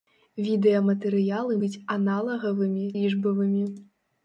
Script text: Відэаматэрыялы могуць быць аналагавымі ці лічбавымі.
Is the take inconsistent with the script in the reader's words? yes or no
yes